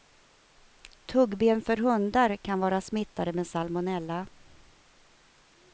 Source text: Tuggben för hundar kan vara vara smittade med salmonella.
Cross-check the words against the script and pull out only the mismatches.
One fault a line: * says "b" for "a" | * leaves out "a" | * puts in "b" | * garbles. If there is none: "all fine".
* leaves out "vara"